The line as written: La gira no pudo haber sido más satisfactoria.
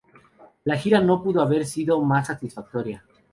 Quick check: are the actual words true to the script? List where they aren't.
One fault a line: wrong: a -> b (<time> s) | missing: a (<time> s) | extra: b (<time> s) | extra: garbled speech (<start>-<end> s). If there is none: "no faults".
no faults